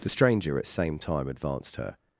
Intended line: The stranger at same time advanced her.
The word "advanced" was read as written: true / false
true